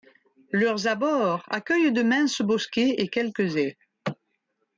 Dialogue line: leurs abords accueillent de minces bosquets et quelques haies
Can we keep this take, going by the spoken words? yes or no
yes